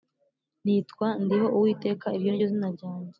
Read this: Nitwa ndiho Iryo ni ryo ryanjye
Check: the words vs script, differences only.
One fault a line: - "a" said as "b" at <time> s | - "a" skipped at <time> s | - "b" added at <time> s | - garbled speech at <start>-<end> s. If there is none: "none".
- "uwiteka" added at 1.6 s
- "zina" added at 2.5 s